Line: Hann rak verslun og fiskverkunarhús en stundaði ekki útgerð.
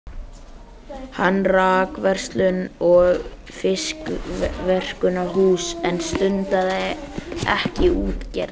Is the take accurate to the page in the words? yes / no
yes